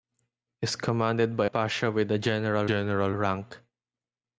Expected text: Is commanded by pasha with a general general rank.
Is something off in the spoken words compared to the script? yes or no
no